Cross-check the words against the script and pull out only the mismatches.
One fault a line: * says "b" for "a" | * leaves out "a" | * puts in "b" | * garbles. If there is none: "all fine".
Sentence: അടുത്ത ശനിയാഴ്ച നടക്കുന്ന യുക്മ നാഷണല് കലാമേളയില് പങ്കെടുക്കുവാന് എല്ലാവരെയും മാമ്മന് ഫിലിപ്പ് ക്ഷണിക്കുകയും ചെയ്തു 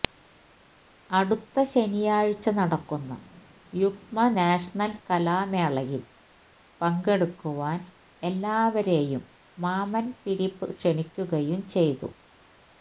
all fine